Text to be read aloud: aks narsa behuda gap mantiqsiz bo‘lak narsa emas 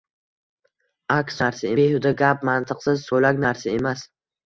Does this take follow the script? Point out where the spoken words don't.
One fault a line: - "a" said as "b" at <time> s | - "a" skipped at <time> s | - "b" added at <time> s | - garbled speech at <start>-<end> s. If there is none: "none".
none